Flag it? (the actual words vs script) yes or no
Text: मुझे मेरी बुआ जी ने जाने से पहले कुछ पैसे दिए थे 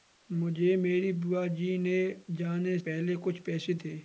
yes